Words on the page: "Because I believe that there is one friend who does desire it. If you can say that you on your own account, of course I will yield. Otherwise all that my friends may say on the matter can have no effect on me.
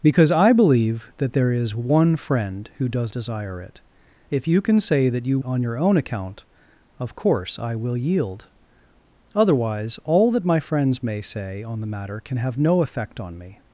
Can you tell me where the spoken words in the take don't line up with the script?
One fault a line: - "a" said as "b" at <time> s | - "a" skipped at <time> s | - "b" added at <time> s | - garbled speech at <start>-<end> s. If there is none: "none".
none